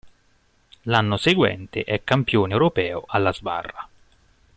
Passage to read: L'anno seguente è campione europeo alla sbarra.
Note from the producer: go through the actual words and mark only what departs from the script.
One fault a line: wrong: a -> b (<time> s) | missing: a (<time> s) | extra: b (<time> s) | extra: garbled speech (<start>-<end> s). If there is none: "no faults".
no faults